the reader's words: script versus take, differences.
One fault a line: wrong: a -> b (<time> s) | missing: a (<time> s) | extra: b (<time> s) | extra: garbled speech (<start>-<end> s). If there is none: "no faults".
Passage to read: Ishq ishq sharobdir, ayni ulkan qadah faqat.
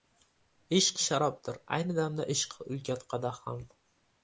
missing: ishq (1.0 s)
extra: damda ishq (2.0 s)
wrong: faqat -> ham (3.5 s)